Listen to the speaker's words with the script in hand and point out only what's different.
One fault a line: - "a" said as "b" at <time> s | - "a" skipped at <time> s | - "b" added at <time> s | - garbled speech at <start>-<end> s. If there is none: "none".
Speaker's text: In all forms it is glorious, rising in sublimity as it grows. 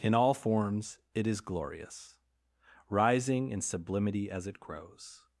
none